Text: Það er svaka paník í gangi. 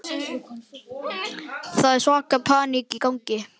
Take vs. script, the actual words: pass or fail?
pass